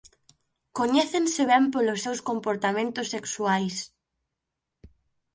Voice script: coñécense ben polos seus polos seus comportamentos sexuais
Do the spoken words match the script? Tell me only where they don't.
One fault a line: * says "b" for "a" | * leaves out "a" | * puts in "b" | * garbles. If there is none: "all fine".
* leaves out "polos seus"